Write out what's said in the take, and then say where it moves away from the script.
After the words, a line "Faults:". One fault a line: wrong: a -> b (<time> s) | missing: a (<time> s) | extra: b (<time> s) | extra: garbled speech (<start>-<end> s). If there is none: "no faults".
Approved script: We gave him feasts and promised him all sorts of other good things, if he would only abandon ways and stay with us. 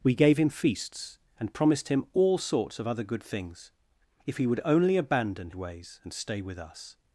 We gave him feasts and promised him all sorts of other good things, if he would only abandon ways and stay with us.
Faults:
no faults